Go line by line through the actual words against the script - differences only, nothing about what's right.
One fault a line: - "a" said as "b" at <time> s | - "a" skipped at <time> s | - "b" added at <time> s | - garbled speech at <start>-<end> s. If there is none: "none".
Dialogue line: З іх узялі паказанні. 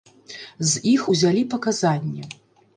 none